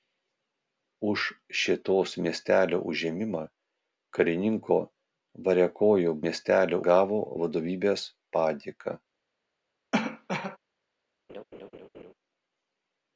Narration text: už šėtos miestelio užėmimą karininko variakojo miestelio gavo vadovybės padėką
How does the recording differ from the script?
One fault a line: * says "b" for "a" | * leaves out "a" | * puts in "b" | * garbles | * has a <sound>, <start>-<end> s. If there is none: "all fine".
* has a cough, 9.9-10.6 s
* has a laugh, 11.3-12.1 s